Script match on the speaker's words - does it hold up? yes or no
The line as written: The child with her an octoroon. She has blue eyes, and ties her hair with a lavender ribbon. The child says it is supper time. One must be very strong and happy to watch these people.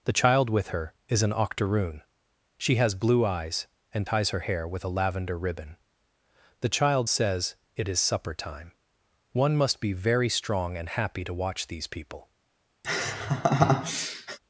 no